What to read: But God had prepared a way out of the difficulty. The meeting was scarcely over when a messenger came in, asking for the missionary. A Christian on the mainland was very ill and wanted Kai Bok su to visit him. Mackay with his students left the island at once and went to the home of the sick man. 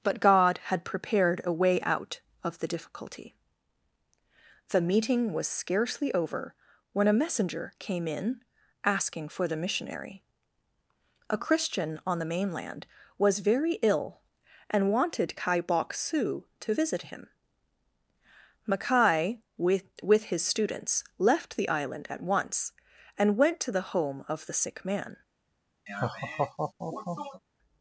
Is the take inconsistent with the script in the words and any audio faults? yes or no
yes